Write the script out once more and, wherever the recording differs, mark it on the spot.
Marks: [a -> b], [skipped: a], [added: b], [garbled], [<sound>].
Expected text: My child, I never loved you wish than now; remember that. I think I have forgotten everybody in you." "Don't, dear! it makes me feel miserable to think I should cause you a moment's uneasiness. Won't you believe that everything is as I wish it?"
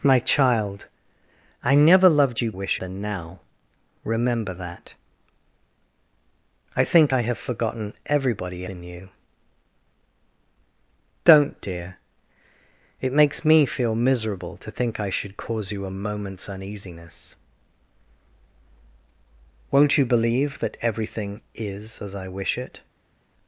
My child, I never loved you wish than now; remember that. I think I have forgotten everybody in you." "Don't, dear! it makes me feel miserable to think I should cause you a moment's uneasiness. Won't you believe that everything is as I wish it?"